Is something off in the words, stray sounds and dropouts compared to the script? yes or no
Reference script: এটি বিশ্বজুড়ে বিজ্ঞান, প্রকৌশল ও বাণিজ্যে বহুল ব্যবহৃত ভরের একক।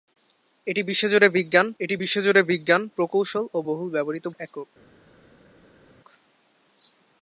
yes